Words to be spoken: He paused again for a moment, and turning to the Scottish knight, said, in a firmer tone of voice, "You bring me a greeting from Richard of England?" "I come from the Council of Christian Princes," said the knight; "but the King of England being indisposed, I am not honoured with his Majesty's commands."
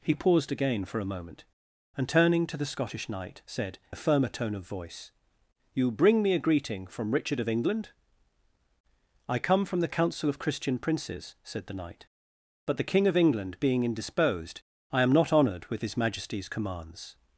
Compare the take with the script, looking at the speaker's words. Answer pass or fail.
fail